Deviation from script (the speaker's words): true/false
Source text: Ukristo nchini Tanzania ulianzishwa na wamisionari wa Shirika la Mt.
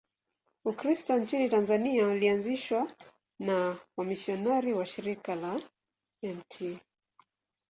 false